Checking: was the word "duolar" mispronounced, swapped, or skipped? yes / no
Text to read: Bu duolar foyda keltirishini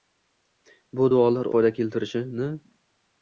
no